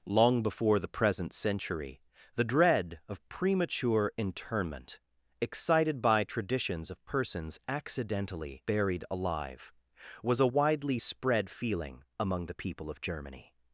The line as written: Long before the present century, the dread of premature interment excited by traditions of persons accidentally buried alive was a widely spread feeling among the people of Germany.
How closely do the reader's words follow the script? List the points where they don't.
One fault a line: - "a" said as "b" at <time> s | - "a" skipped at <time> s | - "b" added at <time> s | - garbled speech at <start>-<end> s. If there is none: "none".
none